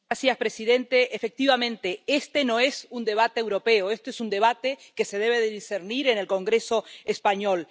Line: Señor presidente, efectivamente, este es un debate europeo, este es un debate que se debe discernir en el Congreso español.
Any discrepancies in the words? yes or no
yes